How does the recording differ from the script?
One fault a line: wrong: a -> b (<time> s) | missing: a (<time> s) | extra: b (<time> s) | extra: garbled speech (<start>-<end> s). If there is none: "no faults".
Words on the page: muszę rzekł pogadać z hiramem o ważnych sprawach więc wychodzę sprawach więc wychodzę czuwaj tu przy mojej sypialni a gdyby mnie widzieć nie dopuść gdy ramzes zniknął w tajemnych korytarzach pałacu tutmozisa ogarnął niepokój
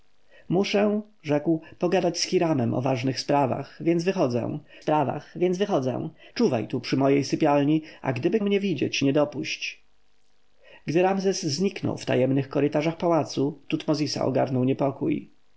no faults